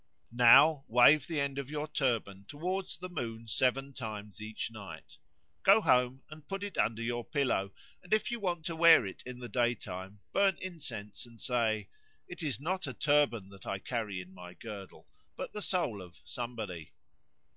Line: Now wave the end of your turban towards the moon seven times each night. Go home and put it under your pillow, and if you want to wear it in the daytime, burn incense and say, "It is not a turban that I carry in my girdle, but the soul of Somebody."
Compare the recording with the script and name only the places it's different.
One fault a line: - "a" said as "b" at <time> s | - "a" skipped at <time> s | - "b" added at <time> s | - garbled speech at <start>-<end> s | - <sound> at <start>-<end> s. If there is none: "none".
none